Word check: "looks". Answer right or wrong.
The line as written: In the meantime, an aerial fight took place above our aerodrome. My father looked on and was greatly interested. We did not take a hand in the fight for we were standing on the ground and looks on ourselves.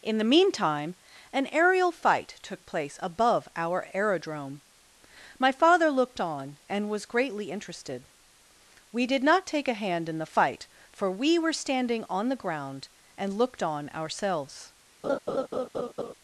wrong